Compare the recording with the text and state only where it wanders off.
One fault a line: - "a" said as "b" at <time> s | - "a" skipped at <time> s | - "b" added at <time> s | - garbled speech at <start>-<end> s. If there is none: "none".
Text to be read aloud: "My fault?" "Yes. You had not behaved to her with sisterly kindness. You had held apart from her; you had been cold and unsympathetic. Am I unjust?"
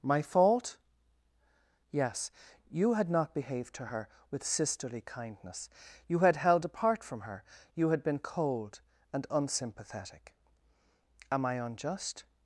none